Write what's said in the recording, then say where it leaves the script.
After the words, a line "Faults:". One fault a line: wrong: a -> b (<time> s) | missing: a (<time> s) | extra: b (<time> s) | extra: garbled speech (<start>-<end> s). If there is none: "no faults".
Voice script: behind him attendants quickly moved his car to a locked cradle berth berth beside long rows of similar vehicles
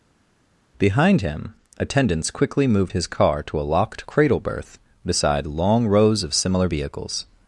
behind him attendants quickly moved his car to a locked cradle berth beside long rows of similar vehicles
Faults:
missing: berth (4.8 s)